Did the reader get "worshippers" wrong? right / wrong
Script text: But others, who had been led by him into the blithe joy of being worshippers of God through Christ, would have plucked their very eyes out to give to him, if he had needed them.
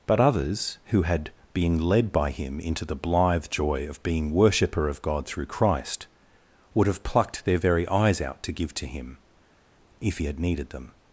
wrong